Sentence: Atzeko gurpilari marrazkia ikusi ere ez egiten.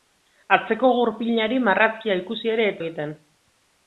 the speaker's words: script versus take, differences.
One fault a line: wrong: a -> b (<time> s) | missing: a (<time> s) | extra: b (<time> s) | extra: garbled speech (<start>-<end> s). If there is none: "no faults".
no faults